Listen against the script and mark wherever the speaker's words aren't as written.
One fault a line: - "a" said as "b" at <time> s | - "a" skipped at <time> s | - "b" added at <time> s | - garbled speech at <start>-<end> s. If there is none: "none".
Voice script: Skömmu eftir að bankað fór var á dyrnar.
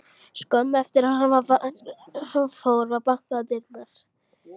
- "bankað" said as "hann" at 2.3 s
- "bankað" added at 3.1 s